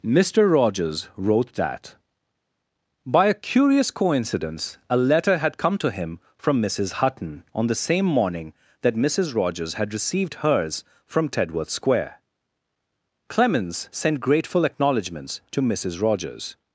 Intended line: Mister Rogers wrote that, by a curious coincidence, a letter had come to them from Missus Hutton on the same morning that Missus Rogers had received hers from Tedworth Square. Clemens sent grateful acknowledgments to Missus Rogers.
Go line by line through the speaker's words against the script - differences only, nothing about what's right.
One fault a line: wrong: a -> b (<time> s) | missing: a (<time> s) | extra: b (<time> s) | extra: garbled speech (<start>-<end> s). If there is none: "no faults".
wrong: them -> him (5.9 s)